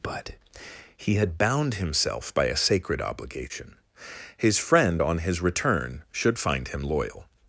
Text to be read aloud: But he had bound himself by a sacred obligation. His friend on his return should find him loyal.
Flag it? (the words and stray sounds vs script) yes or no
no